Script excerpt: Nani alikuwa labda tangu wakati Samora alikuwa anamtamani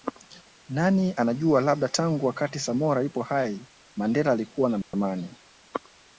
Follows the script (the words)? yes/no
no